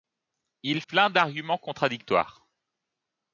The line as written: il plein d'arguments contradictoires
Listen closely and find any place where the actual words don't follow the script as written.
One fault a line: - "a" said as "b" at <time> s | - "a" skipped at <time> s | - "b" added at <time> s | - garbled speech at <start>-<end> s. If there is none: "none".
none